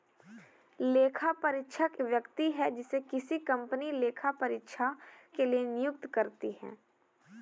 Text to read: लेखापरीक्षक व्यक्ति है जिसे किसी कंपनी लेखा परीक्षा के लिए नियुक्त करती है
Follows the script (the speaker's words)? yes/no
yes